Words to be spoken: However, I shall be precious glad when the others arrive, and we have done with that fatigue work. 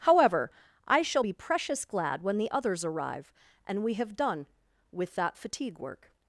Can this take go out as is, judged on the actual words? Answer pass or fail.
pass